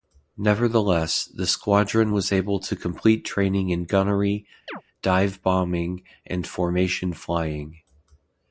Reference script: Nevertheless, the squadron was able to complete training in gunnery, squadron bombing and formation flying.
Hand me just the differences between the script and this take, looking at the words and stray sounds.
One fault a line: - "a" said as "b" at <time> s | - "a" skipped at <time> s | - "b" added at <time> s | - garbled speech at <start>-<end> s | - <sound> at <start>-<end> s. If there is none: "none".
- chirp at 4.7-4.8 s
- "squadron" said as "dive" at 5.0 s